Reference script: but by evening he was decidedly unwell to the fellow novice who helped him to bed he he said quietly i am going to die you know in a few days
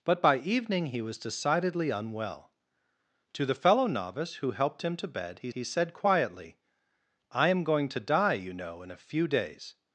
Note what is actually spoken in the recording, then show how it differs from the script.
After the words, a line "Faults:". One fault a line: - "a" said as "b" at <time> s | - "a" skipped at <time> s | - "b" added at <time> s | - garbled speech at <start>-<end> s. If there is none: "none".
but by evening he was decidedly unwell to the fellow novice who helped him to bed he he said quietly i am going to die you know in a few days
Faults:
none